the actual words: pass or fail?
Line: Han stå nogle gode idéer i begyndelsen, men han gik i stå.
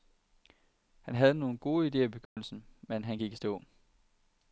fail